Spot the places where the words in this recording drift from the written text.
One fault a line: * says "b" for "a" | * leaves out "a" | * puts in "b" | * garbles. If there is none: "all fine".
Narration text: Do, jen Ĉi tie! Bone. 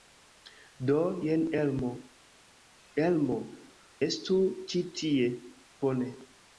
* puts in "Elmo Elmo estu"